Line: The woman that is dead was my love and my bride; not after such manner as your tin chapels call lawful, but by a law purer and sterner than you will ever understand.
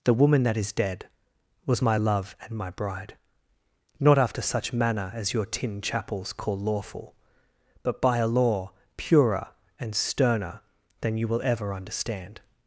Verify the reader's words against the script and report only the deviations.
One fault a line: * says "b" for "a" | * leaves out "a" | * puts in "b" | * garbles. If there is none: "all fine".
all fine